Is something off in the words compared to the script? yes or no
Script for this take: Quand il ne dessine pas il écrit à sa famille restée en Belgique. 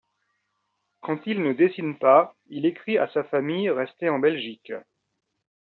no